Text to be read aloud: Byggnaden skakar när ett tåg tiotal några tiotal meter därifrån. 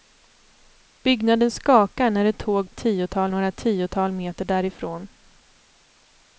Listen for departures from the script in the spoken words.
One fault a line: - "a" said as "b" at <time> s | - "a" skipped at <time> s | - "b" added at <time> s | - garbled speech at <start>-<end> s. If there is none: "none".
none